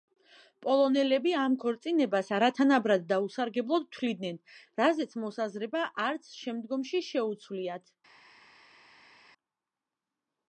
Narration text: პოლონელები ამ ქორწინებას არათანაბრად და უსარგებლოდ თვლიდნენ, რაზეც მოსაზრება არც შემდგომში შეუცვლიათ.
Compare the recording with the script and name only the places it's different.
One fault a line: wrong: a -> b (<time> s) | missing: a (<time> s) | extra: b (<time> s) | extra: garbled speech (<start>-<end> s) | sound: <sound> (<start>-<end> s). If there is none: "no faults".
no faults